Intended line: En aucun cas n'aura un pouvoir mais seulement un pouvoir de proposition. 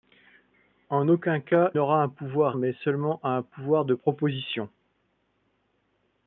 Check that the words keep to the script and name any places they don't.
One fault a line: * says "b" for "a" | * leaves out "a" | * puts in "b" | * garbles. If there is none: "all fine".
all fine